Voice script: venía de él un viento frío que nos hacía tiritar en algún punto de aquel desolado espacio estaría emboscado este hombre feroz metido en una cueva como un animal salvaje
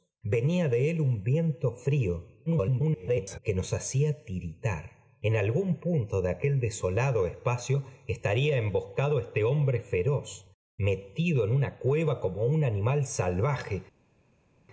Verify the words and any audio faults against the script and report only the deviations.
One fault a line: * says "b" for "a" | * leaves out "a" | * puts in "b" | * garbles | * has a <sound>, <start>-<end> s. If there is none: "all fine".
* garbles